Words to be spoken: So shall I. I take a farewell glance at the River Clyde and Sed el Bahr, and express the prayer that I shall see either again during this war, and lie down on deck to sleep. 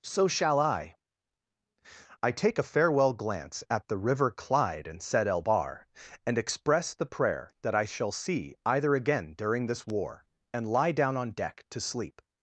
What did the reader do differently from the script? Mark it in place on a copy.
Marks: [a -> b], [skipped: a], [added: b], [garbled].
So shall I. I take a farewell glance at the River Clyde and Sed el Bahr, and express the prayer that I shall see either again during this war, and lie down on deck to sleep.